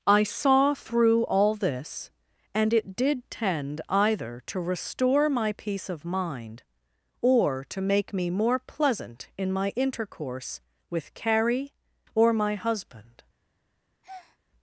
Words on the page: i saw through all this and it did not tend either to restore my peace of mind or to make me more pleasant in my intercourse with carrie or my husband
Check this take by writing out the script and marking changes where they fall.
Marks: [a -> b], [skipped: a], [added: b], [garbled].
i saw through all this and it did [skipped: not] tend either to restore my peace of mind or to make me more pleasant in my intercourse with carrie or my husband